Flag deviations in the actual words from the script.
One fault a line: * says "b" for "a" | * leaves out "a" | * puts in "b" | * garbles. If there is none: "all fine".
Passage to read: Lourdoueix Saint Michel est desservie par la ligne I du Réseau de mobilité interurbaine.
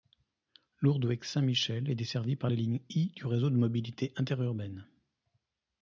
all fine